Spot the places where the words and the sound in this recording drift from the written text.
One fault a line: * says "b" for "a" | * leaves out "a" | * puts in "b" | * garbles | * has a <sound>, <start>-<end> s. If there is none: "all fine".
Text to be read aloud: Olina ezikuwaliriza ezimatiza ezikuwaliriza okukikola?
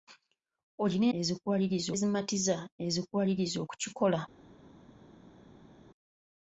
all fine